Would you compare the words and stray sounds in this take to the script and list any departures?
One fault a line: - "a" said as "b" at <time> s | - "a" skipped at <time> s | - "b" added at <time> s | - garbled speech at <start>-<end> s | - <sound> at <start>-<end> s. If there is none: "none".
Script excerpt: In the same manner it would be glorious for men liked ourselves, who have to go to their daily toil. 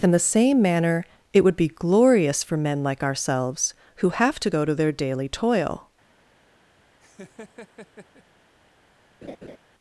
- "liked" said as "like" at 2.8 s
- laugh at 7.0-8.2 s
- laugh at 9.2-9.6 s